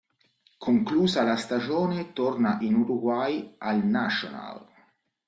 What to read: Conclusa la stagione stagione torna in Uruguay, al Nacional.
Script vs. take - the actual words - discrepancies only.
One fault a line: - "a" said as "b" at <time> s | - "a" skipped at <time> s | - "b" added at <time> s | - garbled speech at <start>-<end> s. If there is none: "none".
- "stagione" skipped at 2.1 s